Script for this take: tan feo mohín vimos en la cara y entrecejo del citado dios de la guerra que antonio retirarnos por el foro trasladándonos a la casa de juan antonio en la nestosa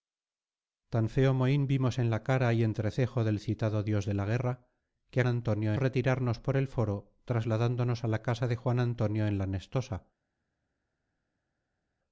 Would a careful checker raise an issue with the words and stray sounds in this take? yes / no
no